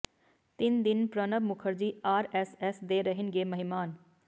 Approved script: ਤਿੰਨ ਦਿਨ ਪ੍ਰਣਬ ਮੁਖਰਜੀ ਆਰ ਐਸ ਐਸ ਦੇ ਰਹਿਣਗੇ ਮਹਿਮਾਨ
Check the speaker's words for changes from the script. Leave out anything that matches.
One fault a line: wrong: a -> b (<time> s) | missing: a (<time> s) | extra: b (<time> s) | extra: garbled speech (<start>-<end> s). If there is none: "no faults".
no faults